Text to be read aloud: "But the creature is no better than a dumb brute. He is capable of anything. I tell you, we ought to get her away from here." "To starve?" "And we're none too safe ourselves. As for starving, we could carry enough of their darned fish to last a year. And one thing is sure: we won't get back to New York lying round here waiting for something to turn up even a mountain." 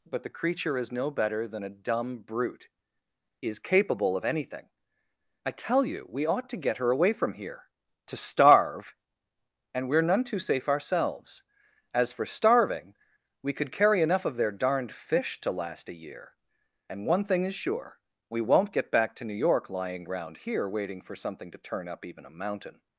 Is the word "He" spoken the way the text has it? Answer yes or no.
no